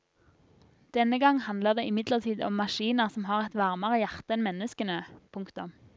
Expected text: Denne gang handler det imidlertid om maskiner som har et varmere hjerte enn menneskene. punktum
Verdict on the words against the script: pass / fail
pass